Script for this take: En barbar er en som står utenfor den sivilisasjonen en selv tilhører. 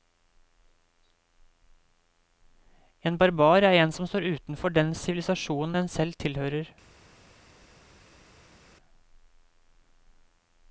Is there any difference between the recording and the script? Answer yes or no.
no